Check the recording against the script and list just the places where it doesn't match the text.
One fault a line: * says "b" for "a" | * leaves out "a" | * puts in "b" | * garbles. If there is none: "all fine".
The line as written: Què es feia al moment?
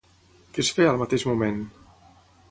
* puts in "mateix"